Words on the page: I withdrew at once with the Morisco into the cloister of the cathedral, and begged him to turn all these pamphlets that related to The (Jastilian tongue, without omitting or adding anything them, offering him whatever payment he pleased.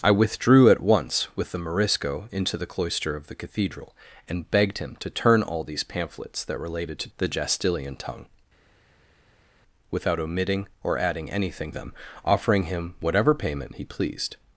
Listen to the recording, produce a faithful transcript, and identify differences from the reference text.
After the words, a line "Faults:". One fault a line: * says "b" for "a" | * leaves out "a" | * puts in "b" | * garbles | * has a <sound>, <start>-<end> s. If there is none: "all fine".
I withdrew at once with the Morisco into the cloister of the cathedral, and begged him to turn all these pamphlets that related to The (Jastilian tongue, without omitting or adding anything them, offering him whatever payment he pleased.
Faults:
all fine